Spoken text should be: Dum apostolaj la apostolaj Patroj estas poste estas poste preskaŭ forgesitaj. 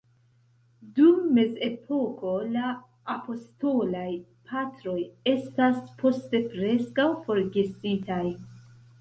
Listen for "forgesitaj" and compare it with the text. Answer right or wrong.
right